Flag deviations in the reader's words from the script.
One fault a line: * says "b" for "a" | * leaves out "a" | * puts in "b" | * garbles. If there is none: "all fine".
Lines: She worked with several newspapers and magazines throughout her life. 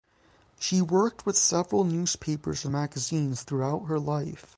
all fine